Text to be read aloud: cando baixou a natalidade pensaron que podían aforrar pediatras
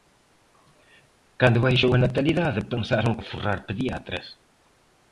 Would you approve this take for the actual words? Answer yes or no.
no